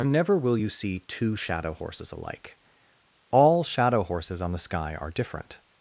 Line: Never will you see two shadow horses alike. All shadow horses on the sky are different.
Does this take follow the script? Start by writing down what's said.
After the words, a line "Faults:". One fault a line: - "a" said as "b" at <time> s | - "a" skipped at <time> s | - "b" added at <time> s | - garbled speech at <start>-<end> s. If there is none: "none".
Never will you see two shadow horses alike. All shadow horses on the sky are different.
Faults:
none